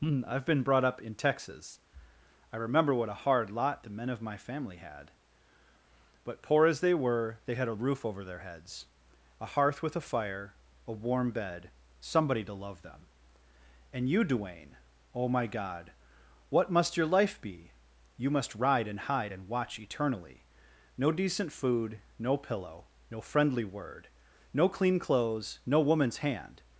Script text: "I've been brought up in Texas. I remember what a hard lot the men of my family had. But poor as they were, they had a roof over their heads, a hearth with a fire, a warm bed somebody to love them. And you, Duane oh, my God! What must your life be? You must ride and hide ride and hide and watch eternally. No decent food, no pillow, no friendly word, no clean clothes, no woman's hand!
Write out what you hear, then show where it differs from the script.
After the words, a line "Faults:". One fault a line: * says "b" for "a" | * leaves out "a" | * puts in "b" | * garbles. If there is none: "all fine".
"I've been brought up in Texas. I remember what a hard lot the men of my family had. But poor as they were, they had a roof over their heads, a hearth with a fire, a warm bed somebody to love them. And you, Duane oh, my God! What must your life be? You must ride and hide and watch eternally. No decent food, no pillow, no friendly word, no clean clothes, no woman's hand!
Faults:
* leaves out "ride and hide"